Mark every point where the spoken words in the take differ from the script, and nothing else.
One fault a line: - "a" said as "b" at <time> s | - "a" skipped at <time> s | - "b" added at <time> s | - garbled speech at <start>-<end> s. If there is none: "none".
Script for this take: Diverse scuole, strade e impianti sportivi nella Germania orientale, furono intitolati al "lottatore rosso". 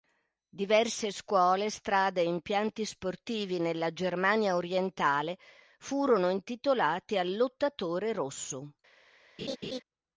none